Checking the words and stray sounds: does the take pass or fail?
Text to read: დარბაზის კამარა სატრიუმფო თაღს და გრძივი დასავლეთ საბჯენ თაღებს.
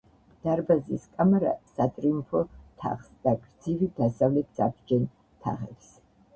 pass